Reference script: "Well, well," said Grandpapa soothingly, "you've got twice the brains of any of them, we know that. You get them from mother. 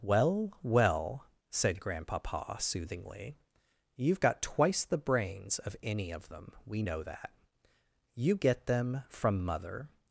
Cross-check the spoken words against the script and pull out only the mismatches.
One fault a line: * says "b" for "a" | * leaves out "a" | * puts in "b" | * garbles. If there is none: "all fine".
all fine